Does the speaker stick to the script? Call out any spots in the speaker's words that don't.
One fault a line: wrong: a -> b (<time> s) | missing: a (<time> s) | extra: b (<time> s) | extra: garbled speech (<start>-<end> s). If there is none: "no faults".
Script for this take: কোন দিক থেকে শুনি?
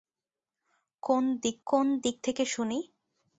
extra: কোন দিক (1.7 s)